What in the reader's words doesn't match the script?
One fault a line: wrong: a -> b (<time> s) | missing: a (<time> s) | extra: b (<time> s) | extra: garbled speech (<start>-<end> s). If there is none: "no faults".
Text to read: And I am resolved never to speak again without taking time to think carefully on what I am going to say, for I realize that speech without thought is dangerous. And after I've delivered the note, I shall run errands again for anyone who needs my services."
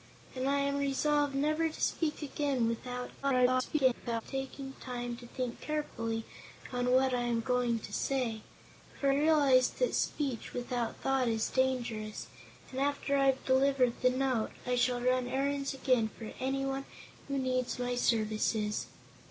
extra: garbled speech (3.2-4.2 s)
missing: I (9.1 s)